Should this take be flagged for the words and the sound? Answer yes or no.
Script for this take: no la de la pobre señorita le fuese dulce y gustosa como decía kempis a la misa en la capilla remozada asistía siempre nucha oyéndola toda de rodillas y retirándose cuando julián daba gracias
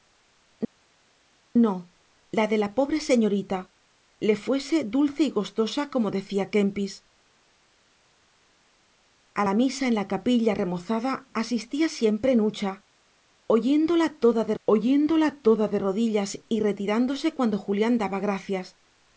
yes